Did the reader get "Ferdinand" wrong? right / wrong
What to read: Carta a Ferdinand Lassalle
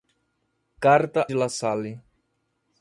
wrong